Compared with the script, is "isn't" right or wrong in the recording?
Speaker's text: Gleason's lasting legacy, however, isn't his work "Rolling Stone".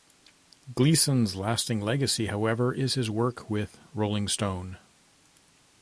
wrong